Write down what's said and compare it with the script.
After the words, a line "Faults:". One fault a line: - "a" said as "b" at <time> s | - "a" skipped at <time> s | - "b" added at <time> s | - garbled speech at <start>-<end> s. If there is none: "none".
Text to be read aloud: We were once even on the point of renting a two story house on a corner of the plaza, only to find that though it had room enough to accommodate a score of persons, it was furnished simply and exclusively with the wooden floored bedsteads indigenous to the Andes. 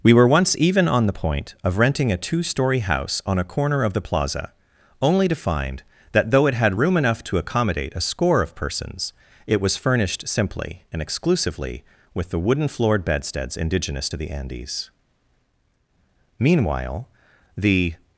We were once even on the point of renting a two story house on a corner of the plaza, only to find that though it had room enough to accommodate a score of persons, it was furnished simply and exclusively with the wooden floored bedsteads indigenous to the Andes. Meanwhile, the
Faults:
- "Meanwhile the" added at 16.4 s